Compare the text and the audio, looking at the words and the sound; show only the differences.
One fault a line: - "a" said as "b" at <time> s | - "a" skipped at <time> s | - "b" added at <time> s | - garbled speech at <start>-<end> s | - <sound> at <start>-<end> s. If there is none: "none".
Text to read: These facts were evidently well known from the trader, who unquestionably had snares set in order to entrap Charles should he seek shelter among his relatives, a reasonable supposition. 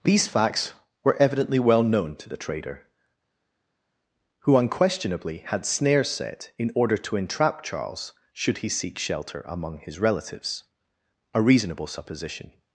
- "from" said as "to" at 2.2 s